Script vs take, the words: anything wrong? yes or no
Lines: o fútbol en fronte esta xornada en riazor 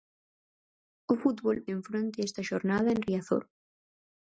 no